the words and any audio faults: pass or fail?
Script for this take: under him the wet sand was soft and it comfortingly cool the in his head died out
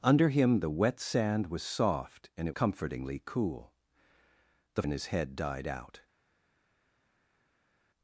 pass